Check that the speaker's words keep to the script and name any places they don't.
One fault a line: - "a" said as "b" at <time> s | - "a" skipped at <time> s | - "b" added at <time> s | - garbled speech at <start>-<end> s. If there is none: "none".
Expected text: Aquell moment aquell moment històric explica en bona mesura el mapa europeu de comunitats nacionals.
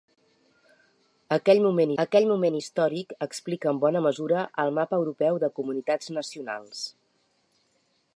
none